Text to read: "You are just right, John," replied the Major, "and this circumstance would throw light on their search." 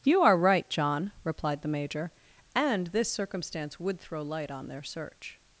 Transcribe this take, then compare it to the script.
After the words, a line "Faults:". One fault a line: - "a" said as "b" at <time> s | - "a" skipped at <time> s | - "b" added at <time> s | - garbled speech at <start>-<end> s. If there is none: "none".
"You are right, John," replied the Major, "and this circumstance would throw light on their search."
Faults:
- "just" skipped at 0.3 s